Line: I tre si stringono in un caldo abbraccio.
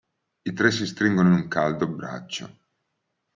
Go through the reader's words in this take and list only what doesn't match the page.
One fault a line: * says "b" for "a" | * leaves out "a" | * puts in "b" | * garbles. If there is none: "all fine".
all fine